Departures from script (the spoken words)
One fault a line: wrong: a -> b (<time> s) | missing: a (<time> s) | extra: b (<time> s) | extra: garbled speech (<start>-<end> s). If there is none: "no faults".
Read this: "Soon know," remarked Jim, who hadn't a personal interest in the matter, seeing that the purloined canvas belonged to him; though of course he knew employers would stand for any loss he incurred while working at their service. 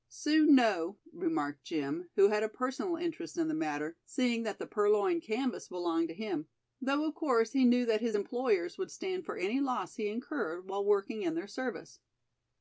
wrong: hadn't -> had (2.3 s)
extra: that his (7.8 s)
wrong: at -> in (11.2 s)